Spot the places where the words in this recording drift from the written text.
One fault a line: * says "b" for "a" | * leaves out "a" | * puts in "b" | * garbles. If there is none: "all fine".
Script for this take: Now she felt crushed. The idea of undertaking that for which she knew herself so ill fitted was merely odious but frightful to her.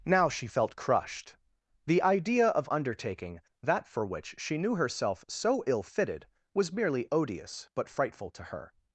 all fine